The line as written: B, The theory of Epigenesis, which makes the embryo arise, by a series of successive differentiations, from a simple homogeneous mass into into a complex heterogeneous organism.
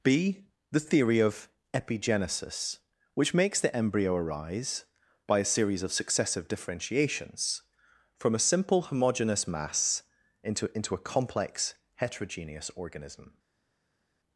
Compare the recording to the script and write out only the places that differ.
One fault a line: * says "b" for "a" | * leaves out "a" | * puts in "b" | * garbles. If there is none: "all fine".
all fine